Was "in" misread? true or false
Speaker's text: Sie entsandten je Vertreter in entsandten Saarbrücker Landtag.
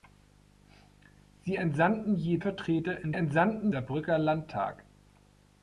false